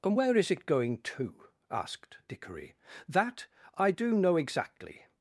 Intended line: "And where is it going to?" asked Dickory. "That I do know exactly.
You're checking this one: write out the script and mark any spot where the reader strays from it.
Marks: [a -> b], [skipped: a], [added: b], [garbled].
"And where is it going to?" asked Dickory. "That I do know exactly.